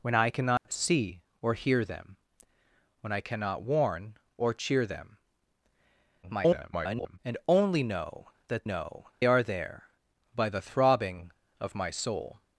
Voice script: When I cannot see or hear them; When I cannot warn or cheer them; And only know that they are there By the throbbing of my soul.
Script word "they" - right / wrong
wrong